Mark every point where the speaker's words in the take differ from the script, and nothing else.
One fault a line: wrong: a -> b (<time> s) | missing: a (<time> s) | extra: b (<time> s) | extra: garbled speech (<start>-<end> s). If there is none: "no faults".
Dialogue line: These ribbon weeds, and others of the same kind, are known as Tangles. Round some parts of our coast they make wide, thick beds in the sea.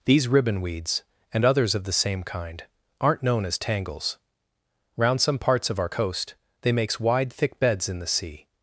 wrong: are -> aren't (3.0 s)
wrong: make -> makes (6.7 s)